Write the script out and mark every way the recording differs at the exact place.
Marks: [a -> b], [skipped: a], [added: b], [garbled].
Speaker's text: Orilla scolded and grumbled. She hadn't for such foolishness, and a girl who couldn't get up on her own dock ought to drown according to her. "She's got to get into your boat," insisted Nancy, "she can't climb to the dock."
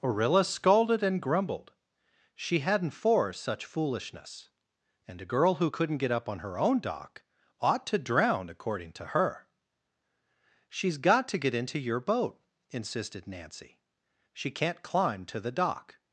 Orilla scolded and grumbled. She hadn't for such foolishness, and a girl who couldn't get up on her own dock ought to drown according to her. "She's got to get into your boat," insisted Nancy, "she can't climb to the dock."